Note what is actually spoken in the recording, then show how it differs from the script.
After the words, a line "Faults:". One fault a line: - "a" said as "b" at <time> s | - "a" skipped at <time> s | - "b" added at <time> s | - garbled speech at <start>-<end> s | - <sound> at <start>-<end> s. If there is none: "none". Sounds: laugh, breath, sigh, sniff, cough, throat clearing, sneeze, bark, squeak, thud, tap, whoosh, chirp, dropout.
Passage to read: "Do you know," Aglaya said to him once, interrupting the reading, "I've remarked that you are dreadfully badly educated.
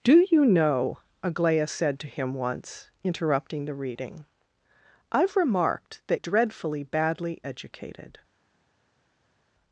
"Do you know," Aglaya said to him once, interrupting the reading, "I've remarked that dreadfully badly educated.
Faults:
- "you are" skipped at 6.2 s